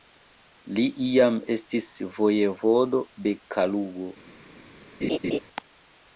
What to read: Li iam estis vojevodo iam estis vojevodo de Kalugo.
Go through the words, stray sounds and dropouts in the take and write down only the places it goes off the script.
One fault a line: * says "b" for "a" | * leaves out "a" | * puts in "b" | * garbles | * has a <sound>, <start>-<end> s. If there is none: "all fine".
* leaves out "iam estis vojevodo"
* has a laugh, 5.0-5.4 s